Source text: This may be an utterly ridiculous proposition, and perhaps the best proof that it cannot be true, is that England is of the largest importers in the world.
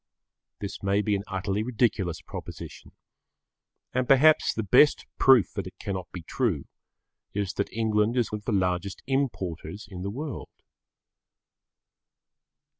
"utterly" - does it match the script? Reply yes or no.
yes